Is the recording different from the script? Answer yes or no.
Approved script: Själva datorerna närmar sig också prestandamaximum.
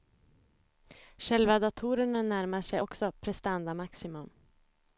no